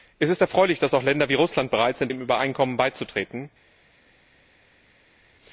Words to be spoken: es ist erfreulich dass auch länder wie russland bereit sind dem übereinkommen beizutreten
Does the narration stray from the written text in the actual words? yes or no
no